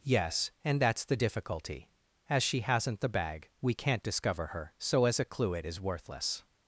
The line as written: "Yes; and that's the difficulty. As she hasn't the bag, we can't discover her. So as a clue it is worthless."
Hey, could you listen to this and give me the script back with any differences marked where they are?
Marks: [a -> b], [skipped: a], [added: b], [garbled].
"Yes; and that's the difficulty. As she hasn't the bag, we can't discover her. So as a clue it is worthless."